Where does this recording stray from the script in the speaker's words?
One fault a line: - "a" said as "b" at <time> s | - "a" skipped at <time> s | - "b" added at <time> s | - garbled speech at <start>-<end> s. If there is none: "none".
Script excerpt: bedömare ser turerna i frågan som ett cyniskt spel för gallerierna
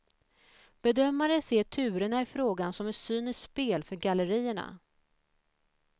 none